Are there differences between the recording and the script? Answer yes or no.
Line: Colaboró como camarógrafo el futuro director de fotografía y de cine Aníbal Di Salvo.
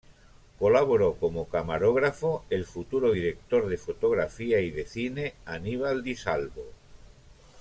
no